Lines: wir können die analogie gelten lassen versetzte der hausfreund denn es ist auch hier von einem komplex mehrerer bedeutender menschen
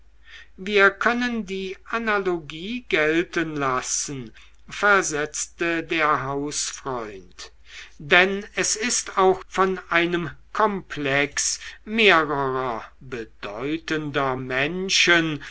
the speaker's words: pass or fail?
fail